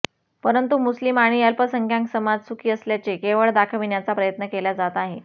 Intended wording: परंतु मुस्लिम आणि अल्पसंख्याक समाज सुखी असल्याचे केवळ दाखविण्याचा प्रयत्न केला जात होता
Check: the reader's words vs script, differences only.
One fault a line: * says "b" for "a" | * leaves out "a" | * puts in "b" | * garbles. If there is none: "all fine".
* says "आहे" for "होता"